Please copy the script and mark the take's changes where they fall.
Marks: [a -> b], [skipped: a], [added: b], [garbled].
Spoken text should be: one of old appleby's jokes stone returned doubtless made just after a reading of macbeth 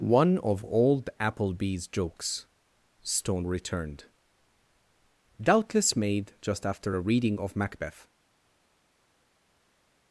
one of old appleby's jokes stone returned doubtless made just after a reading of macbeth